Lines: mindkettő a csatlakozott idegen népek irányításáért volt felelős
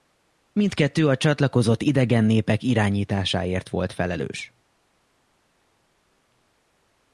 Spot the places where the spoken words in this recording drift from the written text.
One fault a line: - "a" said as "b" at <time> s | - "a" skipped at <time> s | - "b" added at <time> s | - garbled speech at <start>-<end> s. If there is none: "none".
none